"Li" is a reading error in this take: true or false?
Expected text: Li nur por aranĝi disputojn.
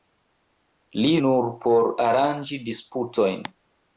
false